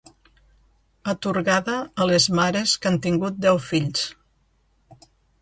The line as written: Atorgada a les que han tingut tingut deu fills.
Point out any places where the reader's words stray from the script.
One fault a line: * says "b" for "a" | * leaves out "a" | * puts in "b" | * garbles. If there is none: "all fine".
* puts in "mares"
* leaves out "tingut"